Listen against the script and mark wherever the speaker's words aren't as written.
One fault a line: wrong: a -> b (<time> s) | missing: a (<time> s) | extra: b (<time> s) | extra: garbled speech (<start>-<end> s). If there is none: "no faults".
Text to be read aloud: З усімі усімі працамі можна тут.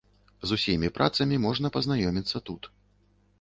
missing: усімі (0.9 s)
extra: пазнаёміцца (1.8 s)